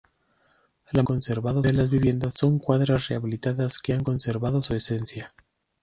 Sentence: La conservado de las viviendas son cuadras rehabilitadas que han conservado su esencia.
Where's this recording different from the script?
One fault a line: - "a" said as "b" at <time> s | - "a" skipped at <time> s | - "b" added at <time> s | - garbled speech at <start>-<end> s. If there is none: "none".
none